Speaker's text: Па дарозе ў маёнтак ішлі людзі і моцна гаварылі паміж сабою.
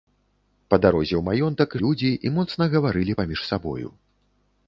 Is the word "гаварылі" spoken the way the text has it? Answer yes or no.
yes